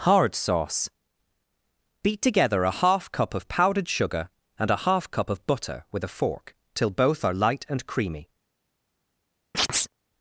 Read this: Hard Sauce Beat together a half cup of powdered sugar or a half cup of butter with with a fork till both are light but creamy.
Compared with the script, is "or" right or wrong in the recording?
wrong